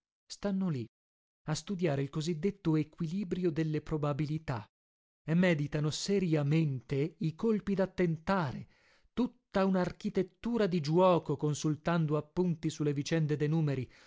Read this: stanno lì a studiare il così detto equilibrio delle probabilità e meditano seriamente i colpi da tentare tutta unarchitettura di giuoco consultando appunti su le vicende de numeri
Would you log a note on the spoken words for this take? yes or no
no